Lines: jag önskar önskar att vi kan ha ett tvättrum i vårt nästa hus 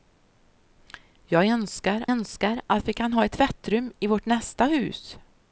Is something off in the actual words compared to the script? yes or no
no